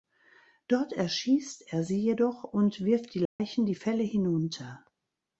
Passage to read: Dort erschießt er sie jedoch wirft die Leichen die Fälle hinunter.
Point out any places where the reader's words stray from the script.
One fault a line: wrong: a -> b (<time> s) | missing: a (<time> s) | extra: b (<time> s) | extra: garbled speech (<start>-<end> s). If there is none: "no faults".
extra: und (2.4 s)